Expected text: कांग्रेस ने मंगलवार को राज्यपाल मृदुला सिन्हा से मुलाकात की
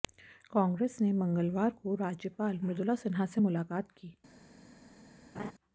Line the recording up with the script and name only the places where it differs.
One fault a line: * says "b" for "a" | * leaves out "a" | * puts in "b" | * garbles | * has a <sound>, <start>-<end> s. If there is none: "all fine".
* has a laugh, 5.3-5.5 s